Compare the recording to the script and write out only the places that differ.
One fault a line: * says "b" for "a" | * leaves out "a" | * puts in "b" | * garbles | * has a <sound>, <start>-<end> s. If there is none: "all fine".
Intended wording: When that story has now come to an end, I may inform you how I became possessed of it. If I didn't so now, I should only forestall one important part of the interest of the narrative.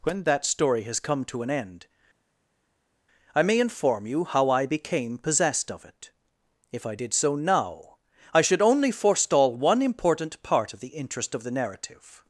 * leaves out "now"
* says "did" for "didn't"